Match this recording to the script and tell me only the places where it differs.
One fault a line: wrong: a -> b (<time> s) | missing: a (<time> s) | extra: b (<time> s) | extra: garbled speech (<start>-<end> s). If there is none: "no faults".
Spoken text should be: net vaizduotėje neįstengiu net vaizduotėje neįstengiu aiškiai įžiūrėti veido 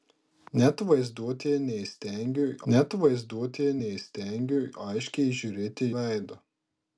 no faults